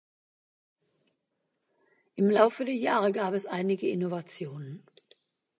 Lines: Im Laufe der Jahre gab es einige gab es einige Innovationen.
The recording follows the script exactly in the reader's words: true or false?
false